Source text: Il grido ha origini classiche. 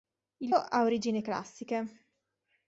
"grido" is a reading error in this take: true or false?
true